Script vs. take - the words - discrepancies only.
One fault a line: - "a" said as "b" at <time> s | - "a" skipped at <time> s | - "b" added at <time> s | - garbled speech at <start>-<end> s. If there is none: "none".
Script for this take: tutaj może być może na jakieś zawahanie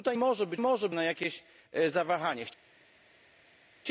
none